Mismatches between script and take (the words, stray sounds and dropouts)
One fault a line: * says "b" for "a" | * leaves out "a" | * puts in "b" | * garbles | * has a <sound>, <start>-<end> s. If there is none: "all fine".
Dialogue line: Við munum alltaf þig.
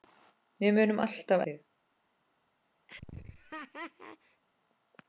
* has a laugh, 2.9-4.4 s